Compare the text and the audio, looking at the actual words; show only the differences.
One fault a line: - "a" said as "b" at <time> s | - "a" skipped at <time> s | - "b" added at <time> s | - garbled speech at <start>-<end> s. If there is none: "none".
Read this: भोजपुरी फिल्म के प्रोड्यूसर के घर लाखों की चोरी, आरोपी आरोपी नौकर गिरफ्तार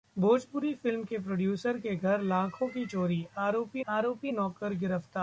none